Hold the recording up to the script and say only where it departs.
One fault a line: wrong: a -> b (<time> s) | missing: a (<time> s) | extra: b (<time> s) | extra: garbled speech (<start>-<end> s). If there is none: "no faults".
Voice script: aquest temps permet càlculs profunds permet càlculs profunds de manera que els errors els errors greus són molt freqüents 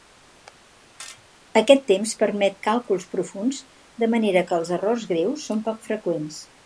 missing: permet càlculs profunds (3.6 s)
missing: els errors (5.1 s)
wrong: molt -> poc (5.7 s)